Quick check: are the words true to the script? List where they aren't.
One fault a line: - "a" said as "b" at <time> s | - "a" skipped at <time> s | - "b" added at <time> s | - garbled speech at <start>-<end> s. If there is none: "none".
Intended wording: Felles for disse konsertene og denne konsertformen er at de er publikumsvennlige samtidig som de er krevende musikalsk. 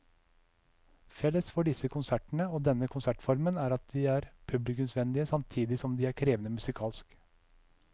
none